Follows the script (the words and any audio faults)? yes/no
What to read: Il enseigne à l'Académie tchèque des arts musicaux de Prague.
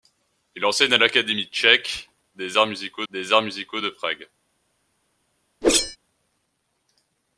no